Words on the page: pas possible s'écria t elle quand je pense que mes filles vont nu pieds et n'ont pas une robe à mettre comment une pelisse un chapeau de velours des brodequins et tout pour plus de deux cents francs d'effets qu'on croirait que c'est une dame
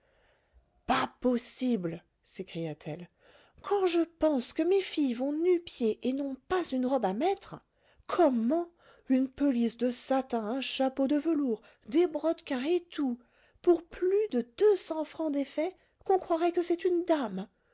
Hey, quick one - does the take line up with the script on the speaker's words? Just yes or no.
no